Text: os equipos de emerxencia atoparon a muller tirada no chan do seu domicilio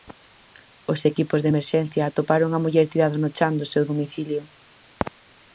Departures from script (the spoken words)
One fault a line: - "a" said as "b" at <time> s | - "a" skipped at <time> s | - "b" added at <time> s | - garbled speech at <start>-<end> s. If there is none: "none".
none